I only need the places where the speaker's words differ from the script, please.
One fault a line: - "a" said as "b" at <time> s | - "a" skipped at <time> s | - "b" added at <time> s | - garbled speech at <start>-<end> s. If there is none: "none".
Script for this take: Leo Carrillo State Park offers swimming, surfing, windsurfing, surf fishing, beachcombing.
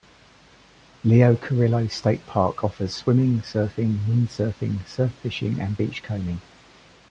- "and" added at 5.6 s